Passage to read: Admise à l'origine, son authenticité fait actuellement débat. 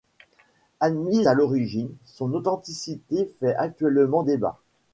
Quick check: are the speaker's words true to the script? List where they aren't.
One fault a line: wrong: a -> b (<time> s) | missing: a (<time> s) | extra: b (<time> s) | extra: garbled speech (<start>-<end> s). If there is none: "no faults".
no faults